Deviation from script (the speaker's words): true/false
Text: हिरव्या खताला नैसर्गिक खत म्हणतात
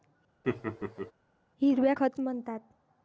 true